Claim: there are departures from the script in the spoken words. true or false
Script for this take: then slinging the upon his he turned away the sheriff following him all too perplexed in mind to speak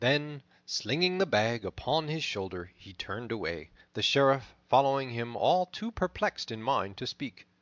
true